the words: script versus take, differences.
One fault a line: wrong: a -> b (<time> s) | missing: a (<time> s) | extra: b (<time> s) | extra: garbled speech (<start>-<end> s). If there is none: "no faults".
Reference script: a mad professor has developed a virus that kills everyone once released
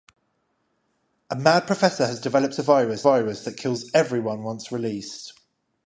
extra: virus (3.0 s)